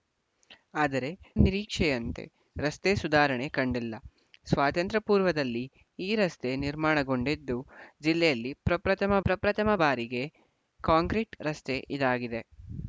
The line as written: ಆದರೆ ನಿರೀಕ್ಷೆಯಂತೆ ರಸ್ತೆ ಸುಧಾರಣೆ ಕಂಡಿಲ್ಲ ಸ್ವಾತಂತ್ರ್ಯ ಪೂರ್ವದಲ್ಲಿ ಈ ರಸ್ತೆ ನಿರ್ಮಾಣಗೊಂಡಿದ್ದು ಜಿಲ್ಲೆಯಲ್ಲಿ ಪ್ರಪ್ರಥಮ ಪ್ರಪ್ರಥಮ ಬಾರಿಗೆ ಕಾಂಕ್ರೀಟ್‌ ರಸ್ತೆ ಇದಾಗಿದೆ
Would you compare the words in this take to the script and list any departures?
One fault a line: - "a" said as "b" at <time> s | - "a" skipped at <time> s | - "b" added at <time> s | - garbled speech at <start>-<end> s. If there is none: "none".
none